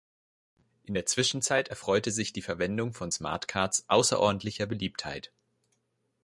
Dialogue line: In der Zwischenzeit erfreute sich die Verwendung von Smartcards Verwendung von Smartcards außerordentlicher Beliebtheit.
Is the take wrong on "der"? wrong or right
right